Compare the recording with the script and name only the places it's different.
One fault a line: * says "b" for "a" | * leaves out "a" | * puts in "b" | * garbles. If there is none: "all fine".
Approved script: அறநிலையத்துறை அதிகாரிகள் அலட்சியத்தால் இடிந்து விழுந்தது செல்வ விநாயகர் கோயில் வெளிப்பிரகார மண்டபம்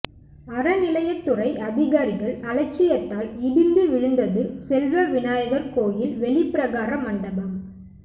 all fine